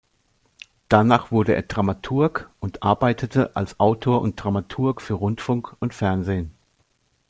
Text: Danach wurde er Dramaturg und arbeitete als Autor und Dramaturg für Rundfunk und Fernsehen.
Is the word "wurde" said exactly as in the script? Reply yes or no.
yes